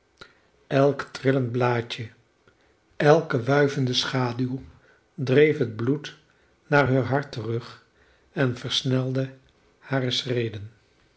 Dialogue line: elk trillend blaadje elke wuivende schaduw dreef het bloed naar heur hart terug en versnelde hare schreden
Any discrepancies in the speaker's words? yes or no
no